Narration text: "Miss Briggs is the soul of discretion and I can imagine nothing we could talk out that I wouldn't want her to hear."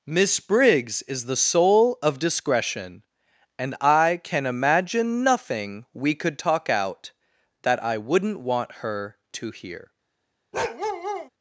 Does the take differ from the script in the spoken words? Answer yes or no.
no